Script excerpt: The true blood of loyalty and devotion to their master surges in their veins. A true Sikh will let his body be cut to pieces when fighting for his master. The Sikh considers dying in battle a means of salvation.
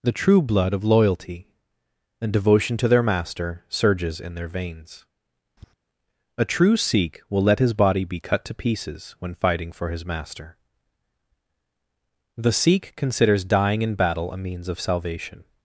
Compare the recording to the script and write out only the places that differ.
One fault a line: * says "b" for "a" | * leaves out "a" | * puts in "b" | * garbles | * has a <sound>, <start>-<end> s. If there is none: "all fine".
* has a tap, 5.6-5.7 s